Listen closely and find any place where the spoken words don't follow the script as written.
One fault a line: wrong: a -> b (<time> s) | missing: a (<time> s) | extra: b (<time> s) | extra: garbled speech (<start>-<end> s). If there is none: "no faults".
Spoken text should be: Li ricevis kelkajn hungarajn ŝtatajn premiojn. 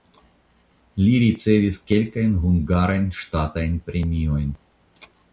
no faults